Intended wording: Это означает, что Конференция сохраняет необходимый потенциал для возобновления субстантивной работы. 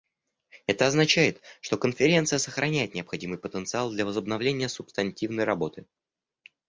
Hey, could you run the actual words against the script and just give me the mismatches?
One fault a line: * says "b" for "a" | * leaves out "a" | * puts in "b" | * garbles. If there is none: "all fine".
all fine